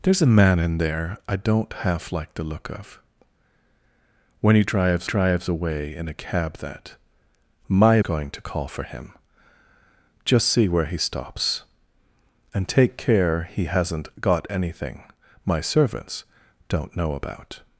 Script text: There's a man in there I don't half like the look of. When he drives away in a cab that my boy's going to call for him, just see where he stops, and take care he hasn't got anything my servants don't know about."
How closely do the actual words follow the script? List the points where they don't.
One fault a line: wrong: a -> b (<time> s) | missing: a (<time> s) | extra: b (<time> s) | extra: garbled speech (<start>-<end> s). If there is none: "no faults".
extra: drives (5.0 s)
missing: boy's (8.0 s)